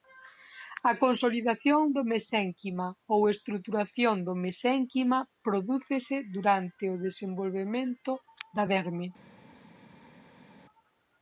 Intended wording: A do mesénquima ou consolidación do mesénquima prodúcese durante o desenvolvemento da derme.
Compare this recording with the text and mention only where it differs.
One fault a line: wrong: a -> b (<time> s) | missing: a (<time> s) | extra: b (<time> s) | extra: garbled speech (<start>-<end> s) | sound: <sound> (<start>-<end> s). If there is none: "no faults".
extra: consolidación (1.0 s)
wrong: consolidación -> estruturación (3.3 s)